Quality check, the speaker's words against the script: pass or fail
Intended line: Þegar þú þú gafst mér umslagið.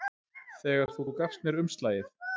pass